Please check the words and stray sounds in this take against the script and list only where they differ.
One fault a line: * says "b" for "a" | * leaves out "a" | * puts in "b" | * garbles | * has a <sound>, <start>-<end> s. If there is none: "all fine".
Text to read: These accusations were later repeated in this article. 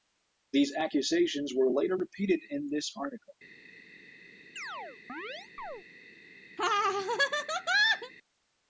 * has a chirp, 4.6-5.8 s
* has a laugh, 6.6-8.1 s